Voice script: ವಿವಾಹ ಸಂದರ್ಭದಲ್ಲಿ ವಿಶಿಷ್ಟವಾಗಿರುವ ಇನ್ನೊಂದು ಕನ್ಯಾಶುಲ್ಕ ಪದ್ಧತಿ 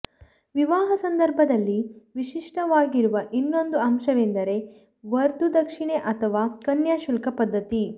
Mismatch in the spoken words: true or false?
true